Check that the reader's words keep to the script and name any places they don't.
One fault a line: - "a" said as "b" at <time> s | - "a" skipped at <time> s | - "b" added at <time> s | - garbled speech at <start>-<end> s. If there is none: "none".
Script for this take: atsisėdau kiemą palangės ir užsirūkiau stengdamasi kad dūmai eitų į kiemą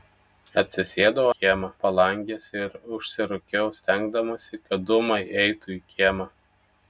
none